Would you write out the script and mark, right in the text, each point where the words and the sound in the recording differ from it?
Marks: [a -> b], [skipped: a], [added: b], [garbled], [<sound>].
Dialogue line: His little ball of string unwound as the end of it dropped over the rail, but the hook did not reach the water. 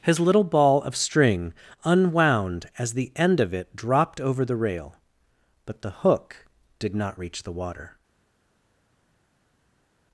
His little ball of string unwound as the end of it dropped over the rail, but the hook did not reach the water.